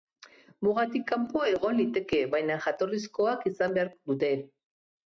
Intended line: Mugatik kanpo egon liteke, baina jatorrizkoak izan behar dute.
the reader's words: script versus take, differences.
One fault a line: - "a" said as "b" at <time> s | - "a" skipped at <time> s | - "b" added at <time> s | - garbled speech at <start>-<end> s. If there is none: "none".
none